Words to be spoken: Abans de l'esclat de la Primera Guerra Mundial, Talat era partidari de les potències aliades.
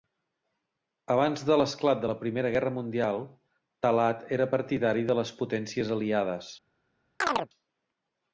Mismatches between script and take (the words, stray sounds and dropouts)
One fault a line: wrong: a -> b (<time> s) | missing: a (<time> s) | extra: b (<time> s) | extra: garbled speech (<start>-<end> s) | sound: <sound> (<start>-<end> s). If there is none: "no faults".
sound: chirp (7.2-7.5 s)